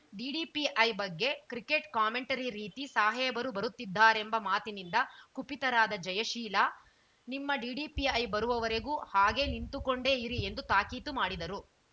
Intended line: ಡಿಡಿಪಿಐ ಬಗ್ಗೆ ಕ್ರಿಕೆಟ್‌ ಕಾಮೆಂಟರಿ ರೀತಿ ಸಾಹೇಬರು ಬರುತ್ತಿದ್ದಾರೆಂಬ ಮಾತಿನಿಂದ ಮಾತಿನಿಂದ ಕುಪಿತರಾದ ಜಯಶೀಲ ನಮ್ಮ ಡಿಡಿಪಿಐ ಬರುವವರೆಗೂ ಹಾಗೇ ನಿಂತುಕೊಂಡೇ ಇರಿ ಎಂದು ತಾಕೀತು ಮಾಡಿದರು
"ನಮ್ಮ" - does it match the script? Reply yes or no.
no